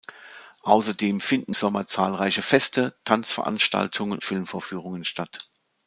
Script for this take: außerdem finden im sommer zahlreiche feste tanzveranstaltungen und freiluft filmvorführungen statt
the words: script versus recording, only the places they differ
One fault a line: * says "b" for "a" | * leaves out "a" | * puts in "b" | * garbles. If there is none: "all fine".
* leaves out "im"
* leaves out "und freiluft"